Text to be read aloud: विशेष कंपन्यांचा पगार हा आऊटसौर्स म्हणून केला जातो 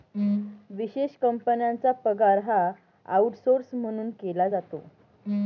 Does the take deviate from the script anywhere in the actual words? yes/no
no